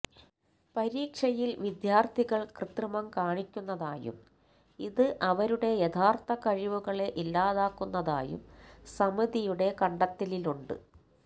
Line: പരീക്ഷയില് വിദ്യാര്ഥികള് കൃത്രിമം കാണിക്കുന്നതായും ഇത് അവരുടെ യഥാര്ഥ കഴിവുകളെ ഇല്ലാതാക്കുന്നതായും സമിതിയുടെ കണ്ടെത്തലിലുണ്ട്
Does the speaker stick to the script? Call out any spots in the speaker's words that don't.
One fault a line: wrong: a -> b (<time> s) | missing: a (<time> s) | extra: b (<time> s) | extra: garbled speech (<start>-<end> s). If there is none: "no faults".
no faults